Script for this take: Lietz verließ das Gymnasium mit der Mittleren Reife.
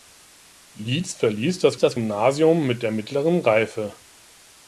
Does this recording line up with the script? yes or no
no